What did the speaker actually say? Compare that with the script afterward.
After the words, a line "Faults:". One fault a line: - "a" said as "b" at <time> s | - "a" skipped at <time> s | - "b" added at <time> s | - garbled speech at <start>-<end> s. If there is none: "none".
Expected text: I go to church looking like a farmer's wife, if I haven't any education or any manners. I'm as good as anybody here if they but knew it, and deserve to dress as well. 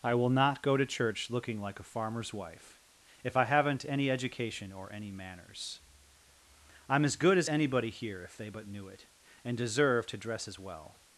I will not go to church looking like a farmer's wife, if I haven't any education or any manners. I'm as good as anybody here if they but knew it, and deserve to dress as well.
Faults:
- "will not" added at 0.1 s